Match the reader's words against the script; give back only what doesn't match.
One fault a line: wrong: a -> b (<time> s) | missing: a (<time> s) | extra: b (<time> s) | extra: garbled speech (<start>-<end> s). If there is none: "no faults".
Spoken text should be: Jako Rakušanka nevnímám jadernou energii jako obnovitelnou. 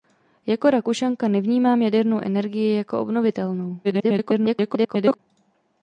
extra: garbled speech (3.8-5.2 s)